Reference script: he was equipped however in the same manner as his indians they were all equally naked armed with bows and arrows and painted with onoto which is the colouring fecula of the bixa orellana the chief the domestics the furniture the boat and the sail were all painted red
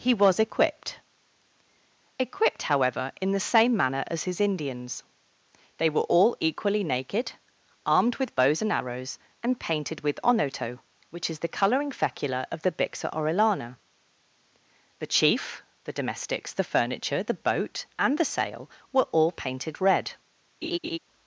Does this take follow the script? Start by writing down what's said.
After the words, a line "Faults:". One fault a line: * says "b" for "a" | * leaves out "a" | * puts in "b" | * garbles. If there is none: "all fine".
he was equipped equipped however in the same manner as his indians they were all equally naked armed with bows and arrows and painted with onoto which is the colouring fecula of the bixa orellana the chief the domestics the furniture the boat and the sail were all painted red
Faults:
* puts in "equipped"